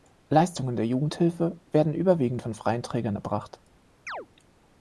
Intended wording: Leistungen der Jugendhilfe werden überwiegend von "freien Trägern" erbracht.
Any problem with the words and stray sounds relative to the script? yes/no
yes